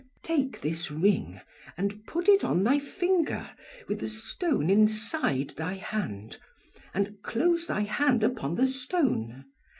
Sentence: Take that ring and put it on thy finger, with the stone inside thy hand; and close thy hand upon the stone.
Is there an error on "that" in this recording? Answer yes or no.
yes